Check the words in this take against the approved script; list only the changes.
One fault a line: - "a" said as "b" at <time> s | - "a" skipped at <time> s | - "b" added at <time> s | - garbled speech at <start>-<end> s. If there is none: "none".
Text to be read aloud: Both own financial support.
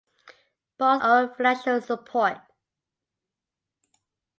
none